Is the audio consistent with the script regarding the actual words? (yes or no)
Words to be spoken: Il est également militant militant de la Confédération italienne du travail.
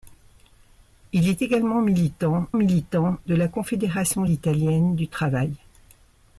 yes